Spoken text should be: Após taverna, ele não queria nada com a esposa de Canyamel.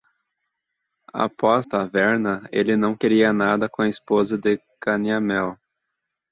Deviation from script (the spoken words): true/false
false